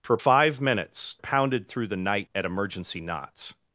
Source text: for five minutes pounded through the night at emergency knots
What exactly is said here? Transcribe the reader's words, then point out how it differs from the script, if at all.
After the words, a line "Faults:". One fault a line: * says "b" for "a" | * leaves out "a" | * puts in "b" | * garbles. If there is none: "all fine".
for five minutes pounded through the night at emergency knots
Faults:
all fine